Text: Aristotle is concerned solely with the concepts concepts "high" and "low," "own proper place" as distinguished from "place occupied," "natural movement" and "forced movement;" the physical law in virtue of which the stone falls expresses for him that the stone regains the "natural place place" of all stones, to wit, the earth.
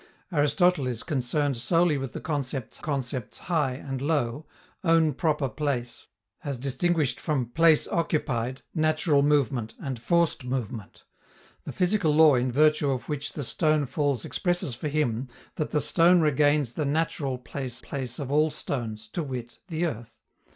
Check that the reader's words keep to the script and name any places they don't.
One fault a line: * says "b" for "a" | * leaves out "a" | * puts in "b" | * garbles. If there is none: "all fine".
all fine